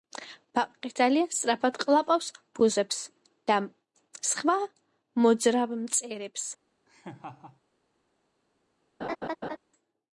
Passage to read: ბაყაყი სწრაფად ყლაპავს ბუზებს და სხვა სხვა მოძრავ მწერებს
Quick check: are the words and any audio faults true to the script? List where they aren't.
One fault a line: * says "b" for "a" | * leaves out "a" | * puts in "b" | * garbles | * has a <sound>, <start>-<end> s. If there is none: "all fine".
* puts in "ძალიან"
* leaves out "სხვა"
* has a laugh, 6.9-7.6 s
* has a laugh, 9.0-9.6 s